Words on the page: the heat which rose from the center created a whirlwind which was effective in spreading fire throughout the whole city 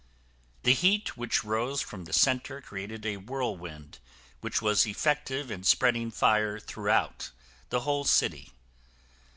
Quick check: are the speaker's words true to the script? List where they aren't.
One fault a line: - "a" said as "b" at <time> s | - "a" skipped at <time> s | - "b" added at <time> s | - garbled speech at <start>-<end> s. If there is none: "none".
none